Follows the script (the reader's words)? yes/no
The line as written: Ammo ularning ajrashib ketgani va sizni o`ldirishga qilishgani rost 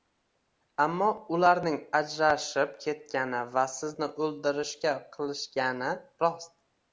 yes